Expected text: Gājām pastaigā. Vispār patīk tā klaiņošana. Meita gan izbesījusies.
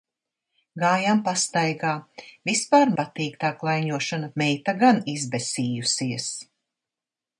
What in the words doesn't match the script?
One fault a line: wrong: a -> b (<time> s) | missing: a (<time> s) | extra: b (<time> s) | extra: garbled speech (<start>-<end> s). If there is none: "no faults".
no faults